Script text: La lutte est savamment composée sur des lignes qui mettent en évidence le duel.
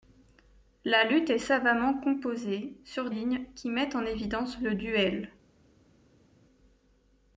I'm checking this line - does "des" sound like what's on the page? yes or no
no